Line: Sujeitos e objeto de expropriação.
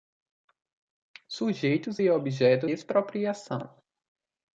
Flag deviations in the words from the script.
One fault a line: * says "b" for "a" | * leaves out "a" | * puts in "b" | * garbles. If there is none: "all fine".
* leaves out "de"